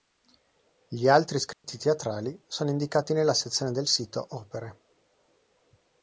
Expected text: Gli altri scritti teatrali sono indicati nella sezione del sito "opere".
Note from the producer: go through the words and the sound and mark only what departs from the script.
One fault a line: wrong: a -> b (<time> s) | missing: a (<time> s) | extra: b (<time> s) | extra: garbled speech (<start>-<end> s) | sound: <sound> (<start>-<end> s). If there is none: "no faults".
sound: dropout (1.5-1.6 s)